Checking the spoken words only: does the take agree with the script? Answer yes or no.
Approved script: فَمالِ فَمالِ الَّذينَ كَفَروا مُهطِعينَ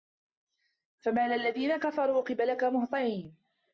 no